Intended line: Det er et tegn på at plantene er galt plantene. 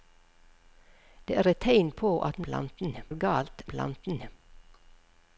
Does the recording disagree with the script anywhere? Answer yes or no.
no